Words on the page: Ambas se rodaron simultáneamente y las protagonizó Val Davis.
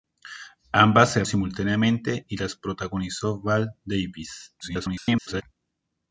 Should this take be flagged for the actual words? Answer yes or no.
yes